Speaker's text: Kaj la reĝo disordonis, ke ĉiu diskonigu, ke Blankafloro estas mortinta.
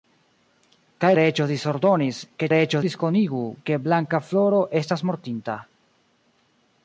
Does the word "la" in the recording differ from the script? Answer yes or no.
yes